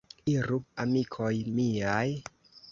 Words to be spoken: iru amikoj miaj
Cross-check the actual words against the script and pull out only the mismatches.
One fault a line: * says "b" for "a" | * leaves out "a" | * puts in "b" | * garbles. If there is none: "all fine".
all fine